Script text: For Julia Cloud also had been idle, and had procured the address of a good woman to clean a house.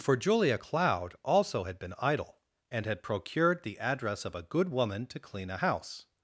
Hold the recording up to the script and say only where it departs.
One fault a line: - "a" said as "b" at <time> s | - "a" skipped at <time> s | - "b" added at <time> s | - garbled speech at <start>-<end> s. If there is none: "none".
none